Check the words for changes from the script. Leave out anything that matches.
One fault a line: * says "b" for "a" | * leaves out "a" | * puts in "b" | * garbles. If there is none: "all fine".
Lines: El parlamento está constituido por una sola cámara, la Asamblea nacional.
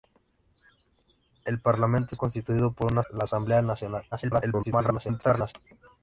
* leaves out "está"
* leaves out "sola cámara"
* garbles